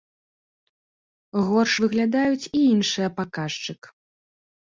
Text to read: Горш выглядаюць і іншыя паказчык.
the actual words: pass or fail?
pass